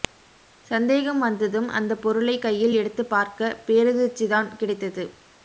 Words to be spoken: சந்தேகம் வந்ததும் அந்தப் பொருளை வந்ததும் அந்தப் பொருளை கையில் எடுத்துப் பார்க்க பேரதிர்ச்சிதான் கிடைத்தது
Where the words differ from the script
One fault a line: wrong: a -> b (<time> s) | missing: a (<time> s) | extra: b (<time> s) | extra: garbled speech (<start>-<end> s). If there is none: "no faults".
missing: வந்ததும் அந்தப் பொருளை (2.4 s)